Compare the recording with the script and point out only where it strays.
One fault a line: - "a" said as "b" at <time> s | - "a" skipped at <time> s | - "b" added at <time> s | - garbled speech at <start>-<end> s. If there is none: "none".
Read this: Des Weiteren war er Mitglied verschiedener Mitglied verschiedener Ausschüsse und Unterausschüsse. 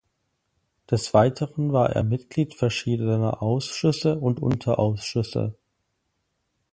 - "Mitglied verschiedener" skipped at 3.4 s